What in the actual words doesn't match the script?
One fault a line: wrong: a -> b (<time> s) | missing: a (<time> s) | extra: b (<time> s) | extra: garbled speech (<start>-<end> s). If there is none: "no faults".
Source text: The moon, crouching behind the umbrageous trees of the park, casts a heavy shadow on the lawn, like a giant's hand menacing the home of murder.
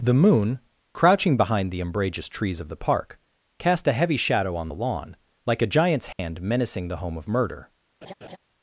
wrong: casts -> cast (3.6 s)